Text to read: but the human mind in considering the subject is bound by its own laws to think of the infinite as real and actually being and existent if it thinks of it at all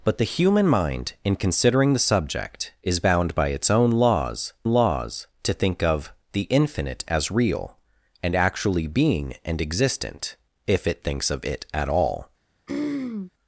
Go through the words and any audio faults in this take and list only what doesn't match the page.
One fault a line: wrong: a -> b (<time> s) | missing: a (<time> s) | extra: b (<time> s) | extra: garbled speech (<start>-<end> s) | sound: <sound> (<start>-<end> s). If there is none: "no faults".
extra: laws (4.6 s)
sound: throat clearing (12.7-13.3 s)